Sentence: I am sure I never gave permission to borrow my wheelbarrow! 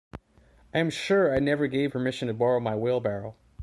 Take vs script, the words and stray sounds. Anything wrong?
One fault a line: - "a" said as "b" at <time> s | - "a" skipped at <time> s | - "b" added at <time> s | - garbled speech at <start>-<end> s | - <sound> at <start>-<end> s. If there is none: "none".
none